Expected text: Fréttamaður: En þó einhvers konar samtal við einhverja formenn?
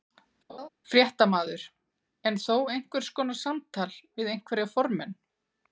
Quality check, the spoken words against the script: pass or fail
pass